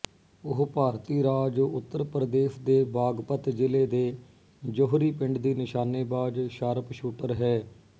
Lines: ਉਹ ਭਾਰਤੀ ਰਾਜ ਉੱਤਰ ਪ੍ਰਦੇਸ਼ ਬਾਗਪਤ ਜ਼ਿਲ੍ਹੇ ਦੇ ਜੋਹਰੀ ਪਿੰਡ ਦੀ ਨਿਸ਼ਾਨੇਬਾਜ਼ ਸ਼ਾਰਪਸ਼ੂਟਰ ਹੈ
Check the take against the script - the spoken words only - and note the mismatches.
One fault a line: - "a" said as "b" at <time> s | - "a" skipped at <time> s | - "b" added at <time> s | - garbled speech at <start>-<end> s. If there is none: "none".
- "ਦੇ" added at 2.6 s